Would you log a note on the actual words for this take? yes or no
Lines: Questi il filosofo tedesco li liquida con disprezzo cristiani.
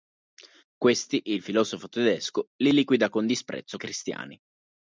no